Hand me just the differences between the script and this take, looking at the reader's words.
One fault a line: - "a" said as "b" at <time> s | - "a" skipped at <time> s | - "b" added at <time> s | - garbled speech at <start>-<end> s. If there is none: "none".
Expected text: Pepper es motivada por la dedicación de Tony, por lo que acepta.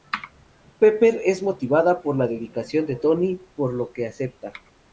none